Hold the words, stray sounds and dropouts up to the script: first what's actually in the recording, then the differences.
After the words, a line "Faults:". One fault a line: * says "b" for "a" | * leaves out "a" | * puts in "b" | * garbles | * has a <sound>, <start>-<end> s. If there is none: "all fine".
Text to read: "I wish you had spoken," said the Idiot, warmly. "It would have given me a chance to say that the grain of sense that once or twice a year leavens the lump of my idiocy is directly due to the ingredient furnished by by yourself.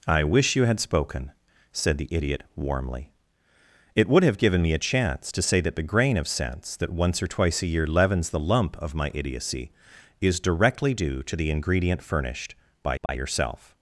"I wish you had spoken," said the Idiot, warmly. "It would have given me a chance to say that the grain of sense that once or twice a year leavens the lump of my idiocy is directly due to the ingredient furnished by by yourself.
Faults:
* has a dropout, 13.1-13.1 s